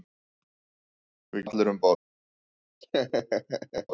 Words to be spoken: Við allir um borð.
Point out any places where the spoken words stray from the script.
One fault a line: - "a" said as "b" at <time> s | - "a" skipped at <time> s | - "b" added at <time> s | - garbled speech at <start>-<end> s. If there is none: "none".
none